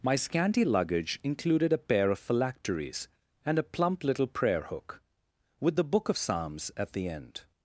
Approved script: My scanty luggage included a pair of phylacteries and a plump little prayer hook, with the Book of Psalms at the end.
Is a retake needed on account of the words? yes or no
no